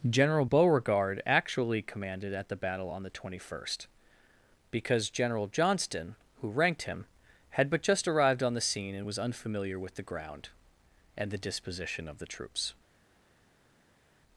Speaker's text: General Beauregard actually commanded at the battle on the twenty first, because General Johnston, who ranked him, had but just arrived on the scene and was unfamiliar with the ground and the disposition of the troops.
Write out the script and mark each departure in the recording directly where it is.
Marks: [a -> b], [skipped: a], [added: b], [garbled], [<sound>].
General Beauregard actually commanded at the battle on the twenty first, because General Johnston, who ranked him, had but just arrived on the scene and was unfamiliar with the ground and the disposition of the troops.